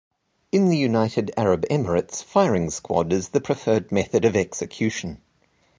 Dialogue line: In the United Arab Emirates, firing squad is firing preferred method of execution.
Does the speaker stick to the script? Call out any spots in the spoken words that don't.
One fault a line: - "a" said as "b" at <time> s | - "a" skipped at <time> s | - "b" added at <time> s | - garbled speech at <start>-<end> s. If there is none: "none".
- "firing" said as "the" at 3.3 s